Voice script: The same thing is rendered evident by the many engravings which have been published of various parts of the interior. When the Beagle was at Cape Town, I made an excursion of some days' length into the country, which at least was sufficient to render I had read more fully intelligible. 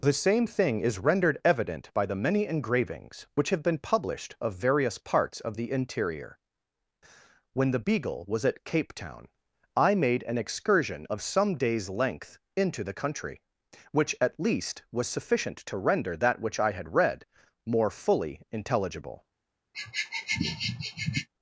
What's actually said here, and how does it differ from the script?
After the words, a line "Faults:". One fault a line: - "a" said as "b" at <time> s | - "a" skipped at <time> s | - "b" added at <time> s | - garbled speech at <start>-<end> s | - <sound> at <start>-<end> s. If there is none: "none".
The same thing is rendered evident by the many engravings which have been published of various parts of the interior. When the Beagle was at Cape Town, I made an excursion of some days' length into the country, which at least was sufficient to render that which I had read more fully intelligible.
Faults:
- "that which" added at 16.1 s
- sniff at 19.7-21.3 s